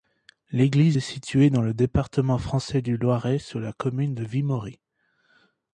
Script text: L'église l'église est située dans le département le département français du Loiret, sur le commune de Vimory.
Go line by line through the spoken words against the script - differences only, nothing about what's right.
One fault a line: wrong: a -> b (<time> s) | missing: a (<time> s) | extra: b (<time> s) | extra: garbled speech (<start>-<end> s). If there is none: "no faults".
missing: l'église (1.0 s)
missing: le département (2.4 s)
wrong: le -> la (3.6 s)